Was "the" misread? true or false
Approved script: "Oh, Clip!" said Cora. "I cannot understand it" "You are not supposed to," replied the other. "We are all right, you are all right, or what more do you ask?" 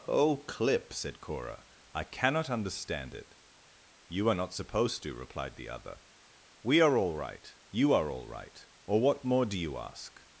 false